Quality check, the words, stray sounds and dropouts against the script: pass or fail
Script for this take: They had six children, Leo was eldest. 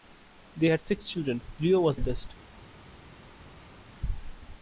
pass